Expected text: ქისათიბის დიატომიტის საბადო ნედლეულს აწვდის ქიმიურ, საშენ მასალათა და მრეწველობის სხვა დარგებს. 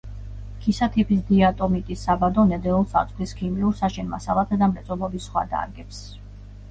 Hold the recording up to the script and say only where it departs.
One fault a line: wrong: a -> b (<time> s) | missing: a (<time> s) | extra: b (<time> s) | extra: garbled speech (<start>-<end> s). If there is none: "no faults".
no faults